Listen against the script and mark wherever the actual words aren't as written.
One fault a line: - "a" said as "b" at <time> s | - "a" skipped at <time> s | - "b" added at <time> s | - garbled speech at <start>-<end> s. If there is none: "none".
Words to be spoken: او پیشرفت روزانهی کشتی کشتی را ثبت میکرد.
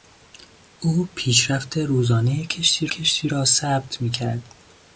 none